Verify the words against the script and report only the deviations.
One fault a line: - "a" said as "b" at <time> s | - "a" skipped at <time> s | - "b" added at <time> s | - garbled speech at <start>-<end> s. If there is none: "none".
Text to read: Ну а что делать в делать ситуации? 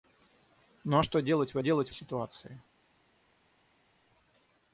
none